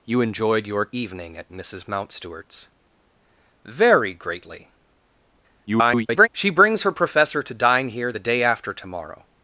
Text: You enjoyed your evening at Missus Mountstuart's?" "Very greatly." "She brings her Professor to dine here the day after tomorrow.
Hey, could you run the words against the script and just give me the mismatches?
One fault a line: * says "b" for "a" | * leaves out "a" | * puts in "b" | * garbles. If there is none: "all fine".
* garbles